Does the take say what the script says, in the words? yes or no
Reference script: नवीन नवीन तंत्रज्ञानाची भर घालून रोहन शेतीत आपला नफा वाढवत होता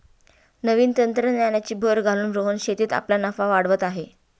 no